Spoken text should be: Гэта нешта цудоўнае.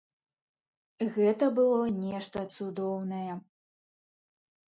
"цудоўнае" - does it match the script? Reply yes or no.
yes